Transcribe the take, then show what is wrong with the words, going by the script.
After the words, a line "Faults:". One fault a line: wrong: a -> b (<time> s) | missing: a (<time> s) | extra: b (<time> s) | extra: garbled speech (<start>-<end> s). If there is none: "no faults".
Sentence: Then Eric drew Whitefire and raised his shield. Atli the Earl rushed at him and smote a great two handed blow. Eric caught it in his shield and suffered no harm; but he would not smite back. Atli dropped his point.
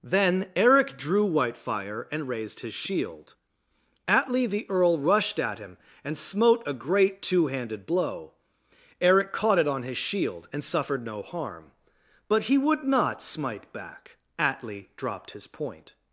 Then Eric drew Whitefire and raised his shield. Atli the Earl rushed at him and smote a great two handed blow. Eric caught it on his shield and suffered no harm; but he would not smite back. Atli dropped his point.
Faults:
wrong: in -> on (9.7 s)